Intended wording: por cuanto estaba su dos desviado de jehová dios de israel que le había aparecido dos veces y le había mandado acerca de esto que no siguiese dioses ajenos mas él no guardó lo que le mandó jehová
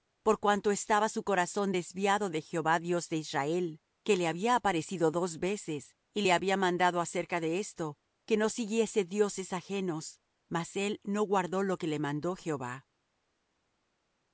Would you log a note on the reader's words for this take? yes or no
yes